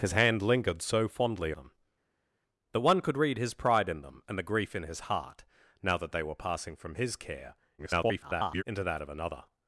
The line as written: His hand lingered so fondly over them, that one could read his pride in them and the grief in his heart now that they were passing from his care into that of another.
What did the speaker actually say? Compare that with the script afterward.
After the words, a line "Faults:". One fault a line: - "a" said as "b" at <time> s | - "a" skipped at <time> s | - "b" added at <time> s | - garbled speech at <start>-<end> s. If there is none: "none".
His hand lingered so fondly them, that one could read his pride in them and the grief in his heart now that they were passing from his care [garbled] into that of another.
Faults:
- "over" skipped at 1.5 s
- garbled speech at 7.8-8.6 s